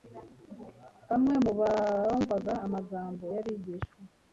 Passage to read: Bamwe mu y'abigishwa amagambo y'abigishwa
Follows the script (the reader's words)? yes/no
no